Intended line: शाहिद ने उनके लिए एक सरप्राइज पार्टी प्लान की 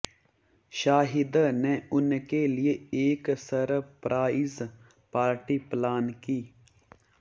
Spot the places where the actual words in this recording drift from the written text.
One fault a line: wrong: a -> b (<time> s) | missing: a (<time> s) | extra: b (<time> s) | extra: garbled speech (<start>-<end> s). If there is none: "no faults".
no faults